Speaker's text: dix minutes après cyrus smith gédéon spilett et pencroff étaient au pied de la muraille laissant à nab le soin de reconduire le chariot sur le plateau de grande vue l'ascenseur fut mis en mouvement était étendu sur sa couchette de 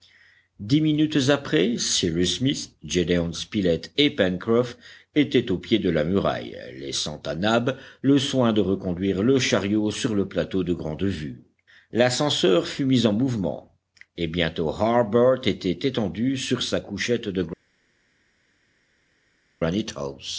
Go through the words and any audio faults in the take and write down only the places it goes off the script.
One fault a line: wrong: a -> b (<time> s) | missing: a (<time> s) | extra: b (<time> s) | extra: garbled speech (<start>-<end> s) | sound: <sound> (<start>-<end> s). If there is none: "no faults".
extra: et bientôt harbert (14.2 s)